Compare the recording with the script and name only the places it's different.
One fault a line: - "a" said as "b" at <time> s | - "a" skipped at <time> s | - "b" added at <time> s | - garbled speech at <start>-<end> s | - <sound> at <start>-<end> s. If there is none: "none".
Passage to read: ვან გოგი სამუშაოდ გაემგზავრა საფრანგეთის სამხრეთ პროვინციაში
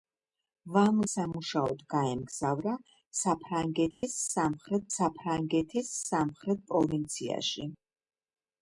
- "გოგი" skipped at 0.9 s
- dropout at 3.9-4.0 s
- "საფრანგეთის სამხრეთ" added at 5.0 s